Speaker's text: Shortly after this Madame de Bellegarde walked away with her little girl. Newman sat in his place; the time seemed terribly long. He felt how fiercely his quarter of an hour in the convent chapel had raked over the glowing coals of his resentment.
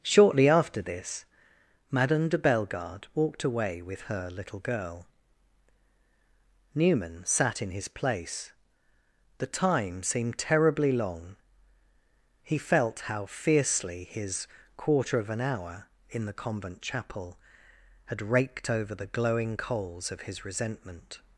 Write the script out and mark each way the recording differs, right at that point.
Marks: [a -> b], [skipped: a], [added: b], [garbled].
Shortly after this Madame de Bellegarde walked away with her little girl. Newman sat in his place; the time seemed terribly long. He felt how fiercely his quarter of an hour in the convent chapel had raked over the glowing coals of his resentment.